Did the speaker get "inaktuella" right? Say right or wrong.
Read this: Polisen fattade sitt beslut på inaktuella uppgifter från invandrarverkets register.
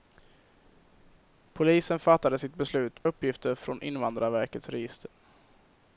wrong